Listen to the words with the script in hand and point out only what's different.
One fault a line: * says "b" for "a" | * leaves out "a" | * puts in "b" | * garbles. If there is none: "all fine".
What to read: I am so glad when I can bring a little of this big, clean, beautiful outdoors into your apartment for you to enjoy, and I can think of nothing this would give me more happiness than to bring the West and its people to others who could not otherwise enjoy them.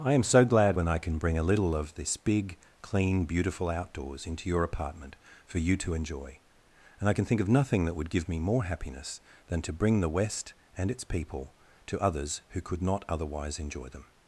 * says "that" for "this"